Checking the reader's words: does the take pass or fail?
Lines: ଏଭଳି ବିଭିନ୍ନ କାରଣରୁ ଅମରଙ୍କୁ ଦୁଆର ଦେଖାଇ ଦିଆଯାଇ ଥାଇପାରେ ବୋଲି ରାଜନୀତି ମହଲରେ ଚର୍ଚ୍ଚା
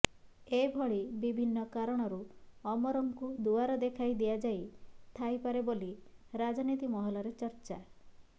pass